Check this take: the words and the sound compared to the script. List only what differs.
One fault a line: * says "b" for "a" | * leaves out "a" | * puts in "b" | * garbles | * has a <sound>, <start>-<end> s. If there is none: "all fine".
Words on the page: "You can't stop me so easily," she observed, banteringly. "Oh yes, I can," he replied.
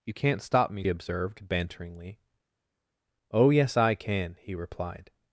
* leaves out "so easily she"